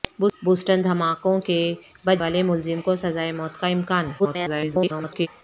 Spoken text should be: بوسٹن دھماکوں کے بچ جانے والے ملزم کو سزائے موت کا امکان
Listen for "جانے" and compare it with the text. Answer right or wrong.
wrong